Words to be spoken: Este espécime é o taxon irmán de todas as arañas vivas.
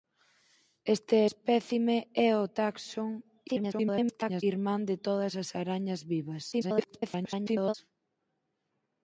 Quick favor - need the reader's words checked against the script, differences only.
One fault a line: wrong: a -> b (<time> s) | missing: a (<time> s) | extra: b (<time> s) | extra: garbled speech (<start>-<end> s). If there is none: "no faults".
extra: garbled speech (3.5-4.4 s)
extra: garbled speech (6.5-7.7 s)